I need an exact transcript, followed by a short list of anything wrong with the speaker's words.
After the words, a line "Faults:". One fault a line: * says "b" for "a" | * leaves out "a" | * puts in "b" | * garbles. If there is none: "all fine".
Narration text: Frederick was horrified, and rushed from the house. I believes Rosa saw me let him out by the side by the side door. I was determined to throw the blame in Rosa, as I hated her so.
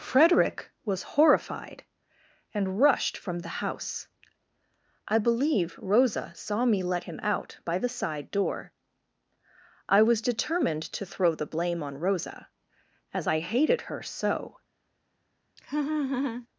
Frederick was horrified, and rushed from the house. I believe Rosa saw me let him out by the side door. I was determined to throw the blame on Rosa, as I hated her so.
Faults:
* says "believe" for "believes"
* leaves out "by the side"
* says "on" for "in"